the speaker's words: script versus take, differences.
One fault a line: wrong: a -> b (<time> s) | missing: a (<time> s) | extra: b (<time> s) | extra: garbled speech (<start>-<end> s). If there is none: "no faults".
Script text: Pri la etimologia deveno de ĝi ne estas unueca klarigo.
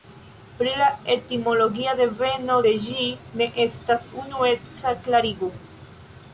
no faults